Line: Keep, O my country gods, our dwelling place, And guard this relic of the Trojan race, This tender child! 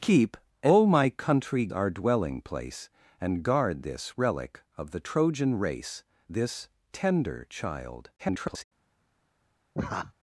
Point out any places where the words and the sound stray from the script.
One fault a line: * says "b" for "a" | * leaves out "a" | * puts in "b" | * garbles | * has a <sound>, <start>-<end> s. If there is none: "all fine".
* leaves out "gods"
* garbles
* has a laugh, 9.7-10.1 s